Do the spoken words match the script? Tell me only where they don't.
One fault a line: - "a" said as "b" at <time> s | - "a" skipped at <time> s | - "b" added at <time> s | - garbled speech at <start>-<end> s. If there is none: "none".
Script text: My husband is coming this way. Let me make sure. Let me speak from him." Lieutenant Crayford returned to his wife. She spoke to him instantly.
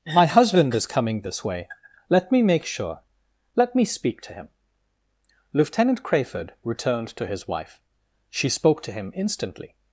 - "from" said as "to" at 4.2 s